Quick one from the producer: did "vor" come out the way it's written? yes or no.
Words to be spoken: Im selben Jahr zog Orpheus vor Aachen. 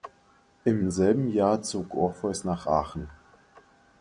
no